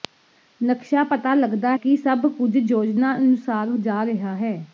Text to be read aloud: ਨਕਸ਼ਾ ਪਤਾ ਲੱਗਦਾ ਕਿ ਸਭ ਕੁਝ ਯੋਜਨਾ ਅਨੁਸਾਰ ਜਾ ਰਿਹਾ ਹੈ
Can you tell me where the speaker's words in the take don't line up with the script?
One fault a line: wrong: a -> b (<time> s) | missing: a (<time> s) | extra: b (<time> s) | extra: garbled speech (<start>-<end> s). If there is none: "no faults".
no faults